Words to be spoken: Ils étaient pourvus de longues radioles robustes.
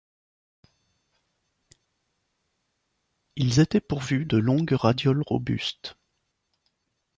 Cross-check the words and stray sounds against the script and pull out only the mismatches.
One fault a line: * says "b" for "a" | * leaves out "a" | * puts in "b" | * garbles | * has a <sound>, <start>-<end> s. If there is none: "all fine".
all fine